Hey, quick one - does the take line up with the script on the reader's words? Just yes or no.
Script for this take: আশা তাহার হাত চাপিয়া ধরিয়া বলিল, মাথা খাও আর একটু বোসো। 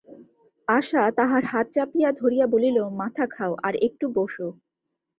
yes